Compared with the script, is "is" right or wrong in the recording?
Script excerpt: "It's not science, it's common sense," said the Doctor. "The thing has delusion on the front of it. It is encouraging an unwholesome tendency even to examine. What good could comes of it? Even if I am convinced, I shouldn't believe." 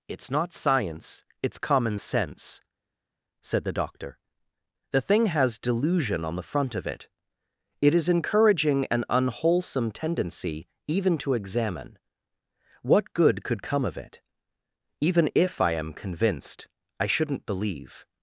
right